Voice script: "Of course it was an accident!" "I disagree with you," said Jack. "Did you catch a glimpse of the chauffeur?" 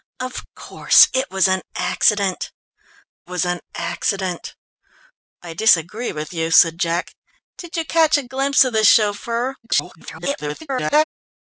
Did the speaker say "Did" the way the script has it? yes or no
yes